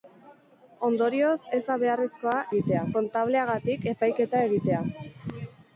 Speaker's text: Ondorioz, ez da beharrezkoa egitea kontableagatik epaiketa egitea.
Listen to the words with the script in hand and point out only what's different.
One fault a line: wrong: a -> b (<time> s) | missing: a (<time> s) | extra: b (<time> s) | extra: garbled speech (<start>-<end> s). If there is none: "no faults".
no faults